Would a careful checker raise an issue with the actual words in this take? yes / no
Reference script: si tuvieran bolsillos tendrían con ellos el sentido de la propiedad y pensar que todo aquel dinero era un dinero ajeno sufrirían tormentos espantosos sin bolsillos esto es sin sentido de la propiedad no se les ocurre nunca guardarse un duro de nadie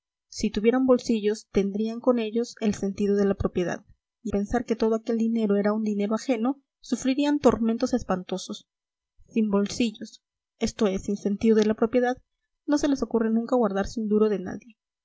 no